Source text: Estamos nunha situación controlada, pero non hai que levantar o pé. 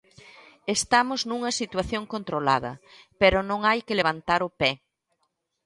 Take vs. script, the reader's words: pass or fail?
pass